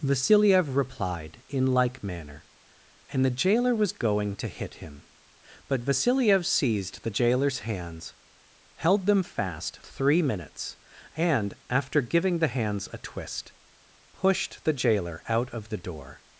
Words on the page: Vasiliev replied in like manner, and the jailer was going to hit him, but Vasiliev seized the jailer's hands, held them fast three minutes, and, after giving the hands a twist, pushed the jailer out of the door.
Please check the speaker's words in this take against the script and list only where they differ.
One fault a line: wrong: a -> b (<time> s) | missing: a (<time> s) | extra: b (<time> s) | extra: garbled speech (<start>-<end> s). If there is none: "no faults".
no faults